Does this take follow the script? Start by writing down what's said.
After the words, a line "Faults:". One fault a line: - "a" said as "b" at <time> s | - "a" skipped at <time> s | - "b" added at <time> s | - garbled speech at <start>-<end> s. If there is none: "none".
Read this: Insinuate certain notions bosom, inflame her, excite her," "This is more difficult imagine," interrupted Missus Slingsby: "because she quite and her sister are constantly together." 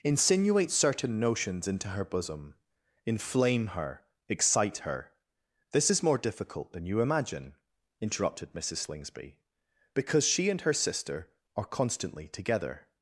Insinuate certain notions into her bosom, inflame her, excite her," "This is more difficult than you imagine," interrupted Missus Slingsby: "because she and her sister are constantly together."
Faults:
- "into her" added at 1.7 s
- "than you" added at 6.7 s
- "quite" skipped at 10.5 s